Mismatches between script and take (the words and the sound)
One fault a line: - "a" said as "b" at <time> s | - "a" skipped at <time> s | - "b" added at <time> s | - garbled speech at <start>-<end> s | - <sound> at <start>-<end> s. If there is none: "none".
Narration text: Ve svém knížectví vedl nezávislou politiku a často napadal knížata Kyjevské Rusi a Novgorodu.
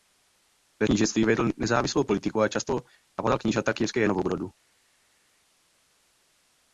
- "svém" skipped at 0.9 s
- "Rusi a" skipped at 4.1 s